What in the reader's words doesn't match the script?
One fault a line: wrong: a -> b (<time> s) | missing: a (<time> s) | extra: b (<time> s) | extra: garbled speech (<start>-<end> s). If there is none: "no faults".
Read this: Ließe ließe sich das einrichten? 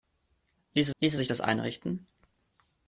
no faults